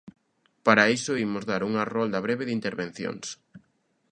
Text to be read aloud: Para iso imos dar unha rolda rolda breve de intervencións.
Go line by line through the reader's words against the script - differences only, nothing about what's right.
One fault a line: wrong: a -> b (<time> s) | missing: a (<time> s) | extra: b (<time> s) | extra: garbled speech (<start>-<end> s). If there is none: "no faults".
missing: rolda (2.2 s)